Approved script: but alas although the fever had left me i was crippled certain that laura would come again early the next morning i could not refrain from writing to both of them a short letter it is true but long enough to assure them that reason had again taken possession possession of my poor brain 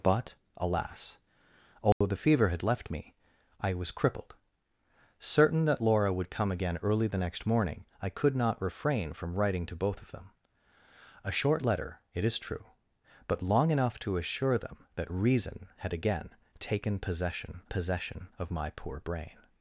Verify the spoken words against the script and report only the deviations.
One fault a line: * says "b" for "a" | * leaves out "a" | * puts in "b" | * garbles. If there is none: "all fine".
all fine